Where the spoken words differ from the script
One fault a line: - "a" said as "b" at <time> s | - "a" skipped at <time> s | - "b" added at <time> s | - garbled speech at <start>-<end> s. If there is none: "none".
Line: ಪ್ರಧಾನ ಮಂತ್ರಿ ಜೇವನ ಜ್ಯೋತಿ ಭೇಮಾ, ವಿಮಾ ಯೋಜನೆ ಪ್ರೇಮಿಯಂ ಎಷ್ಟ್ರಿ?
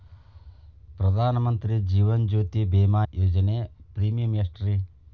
- "ವಿಮಾ" skipped at 3.0 s